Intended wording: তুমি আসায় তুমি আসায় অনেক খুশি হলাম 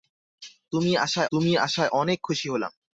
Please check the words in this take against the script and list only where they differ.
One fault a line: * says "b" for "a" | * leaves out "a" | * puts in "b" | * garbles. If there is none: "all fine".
all fine